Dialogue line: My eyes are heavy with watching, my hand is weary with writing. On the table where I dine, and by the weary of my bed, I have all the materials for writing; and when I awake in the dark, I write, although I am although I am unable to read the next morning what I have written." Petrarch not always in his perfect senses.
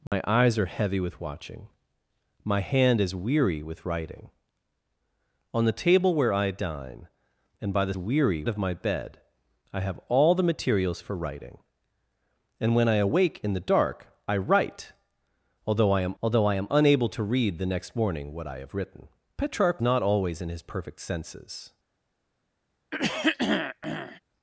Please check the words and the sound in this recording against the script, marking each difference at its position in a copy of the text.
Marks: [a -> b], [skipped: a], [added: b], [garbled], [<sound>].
My [dropout] eyes are heavy with watching, my hand is weary with writing. On the table where I dine, and by the weary of my bed, I have all the materials for writing; and when I awake in the dark, I write, although I am although I am unable to read the next morning what I have written." Petrarch not always in his perfect senses. [throat clearing]